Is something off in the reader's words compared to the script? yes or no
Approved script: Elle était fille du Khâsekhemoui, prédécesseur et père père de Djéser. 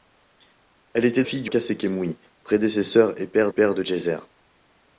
no